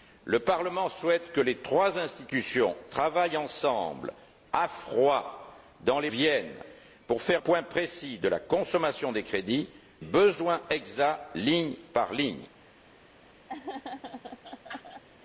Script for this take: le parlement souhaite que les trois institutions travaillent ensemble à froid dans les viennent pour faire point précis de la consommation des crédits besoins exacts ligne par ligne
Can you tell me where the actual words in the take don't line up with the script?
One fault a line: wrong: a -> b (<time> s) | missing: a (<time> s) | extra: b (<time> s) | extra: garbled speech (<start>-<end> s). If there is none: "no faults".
no faults